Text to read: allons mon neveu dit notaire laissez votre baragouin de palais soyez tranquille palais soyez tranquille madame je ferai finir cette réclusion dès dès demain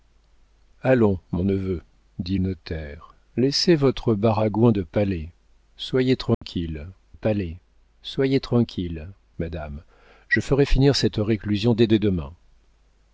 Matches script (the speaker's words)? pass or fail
pass